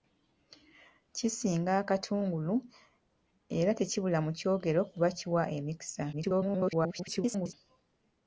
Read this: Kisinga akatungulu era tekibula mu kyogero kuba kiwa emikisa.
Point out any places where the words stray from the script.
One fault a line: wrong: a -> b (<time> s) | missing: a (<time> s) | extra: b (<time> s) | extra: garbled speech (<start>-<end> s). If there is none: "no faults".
extra: garbled speech (6.1-7.5 s)